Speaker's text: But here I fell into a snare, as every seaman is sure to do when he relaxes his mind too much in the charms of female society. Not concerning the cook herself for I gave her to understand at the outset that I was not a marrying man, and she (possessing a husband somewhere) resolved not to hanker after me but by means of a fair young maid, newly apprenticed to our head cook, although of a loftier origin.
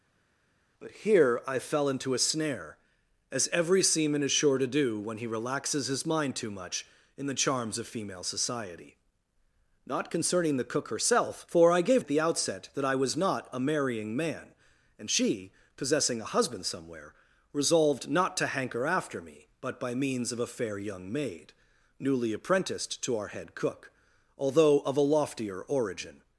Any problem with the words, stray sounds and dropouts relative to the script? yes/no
yes